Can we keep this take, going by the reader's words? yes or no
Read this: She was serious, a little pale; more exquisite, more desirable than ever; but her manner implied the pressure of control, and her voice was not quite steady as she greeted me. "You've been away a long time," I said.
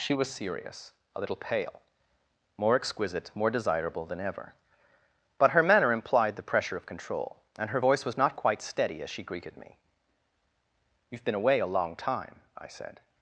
yes